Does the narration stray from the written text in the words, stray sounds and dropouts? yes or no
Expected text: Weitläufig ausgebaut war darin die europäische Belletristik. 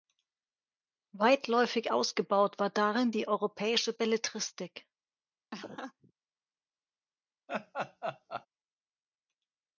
yes